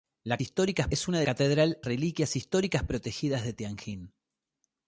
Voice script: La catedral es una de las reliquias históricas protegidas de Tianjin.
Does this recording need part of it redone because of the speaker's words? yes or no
yes